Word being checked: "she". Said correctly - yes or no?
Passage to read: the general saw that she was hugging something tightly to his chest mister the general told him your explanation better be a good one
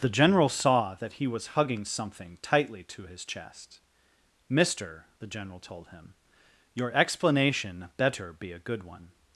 no